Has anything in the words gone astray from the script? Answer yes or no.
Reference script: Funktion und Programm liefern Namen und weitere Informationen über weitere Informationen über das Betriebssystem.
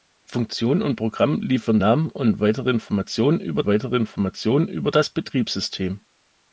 no